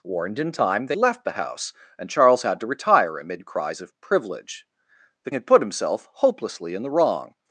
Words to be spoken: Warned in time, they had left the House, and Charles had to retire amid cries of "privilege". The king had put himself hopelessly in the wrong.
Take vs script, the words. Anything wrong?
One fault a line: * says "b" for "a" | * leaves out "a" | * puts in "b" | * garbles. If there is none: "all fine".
* leaves out "had"
* leaves out "king"